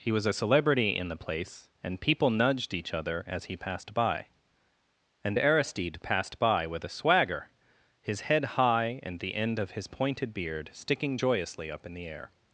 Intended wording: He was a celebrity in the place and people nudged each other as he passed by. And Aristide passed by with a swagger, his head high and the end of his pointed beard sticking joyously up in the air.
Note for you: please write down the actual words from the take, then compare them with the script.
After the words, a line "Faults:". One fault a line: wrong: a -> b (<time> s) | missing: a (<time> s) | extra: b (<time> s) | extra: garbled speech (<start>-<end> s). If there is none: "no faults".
He was a celebrity in the place and people nudged each other as he passed by. And Aristide passed by with a swagger, his head high and the end of his pointed beard sticking joyously up in the air.
Faults:
no faults